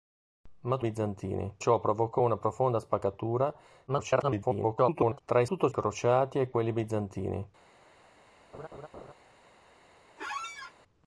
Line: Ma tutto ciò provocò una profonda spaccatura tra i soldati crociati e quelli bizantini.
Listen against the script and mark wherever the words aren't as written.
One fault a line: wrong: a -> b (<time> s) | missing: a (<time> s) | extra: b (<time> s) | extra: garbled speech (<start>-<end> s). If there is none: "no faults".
wrong: tutto -> bizantini (0.8 s)
extra: garbled speech (3.9-5.2 s)
wrong: soldati -> tutto (5.4 s)